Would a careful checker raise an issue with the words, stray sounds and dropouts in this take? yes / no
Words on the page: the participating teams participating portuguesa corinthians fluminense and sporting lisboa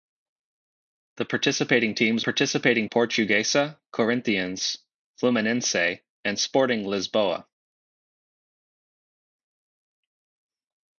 no